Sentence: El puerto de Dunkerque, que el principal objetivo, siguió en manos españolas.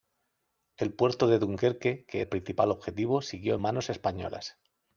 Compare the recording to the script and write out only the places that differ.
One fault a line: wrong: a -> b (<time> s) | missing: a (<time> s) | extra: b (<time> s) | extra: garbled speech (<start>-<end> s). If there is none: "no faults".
no faults